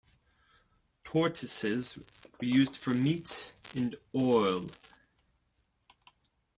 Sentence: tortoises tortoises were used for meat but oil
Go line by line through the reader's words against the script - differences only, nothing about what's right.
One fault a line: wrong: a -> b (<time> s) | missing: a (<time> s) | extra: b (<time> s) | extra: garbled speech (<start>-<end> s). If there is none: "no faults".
missing: tortoises (2.0 s)
wrong: but -> and (3.8 s)